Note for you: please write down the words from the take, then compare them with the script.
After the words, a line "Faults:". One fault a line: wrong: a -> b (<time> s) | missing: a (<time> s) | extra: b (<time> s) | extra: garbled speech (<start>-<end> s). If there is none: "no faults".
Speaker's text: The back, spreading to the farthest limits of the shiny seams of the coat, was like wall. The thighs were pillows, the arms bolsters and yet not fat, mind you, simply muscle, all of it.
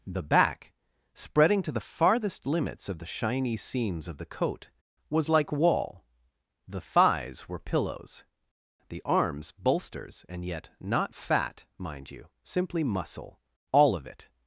The back, spreading to the farthest limits of the shiny seams of the coat, was like wall. The thighs were pillows, the arms bolsters and yet not fat, mind you, simply muscle, all of it.
Faults:
no faults